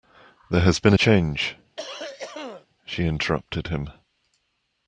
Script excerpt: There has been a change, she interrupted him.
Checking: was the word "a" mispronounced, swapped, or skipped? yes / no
no